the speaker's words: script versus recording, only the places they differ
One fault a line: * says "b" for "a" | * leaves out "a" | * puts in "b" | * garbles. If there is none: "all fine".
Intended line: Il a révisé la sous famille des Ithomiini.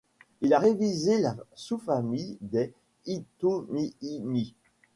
all fine